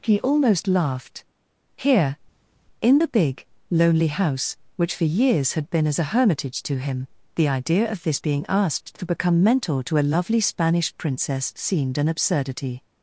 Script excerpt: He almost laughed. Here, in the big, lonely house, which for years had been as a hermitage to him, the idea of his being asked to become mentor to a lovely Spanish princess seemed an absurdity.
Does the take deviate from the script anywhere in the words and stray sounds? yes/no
yes